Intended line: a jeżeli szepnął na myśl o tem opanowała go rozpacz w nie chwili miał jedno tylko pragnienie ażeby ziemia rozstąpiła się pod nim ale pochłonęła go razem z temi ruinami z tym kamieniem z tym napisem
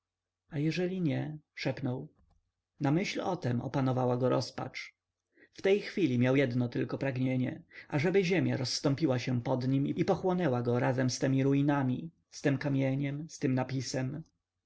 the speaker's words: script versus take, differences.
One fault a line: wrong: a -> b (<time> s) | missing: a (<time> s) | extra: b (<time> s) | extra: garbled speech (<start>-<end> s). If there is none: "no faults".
extra: nie (1.0 s)
wrong: nie -> tej (5.6 s)
wrong: ale -> i (9.9 s)